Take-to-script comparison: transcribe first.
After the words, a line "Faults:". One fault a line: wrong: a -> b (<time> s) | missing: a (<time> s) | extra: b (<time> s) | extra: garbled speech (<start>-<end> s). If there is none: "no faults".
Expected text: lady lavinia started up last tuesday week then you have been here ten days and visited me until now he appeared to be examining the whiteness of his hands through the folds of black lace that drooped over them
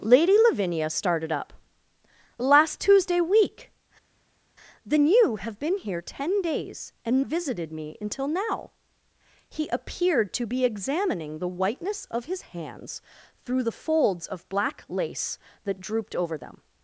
lady lavinia started up last tuesday week then you have been here ten days and visited me until now he appeared to be examining the whiteness of his hands through the folds of black lace that drooped over them
Faults:
no faults